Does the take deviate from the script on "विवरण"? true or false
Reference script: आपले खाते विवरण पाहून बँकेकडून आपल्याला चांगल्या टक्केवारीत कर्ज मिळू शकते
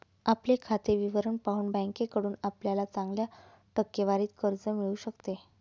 false